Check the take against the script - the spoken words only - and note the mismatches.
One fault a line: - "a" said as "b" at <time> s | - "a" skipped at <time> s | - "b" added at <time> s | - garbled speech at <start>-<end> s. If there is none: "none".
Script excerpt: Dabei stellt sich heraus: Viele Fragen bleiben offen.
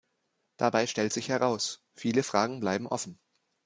none